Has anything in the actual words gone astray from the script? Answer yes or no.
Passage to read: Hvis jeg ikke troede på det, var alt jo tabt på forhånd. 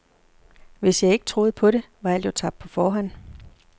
no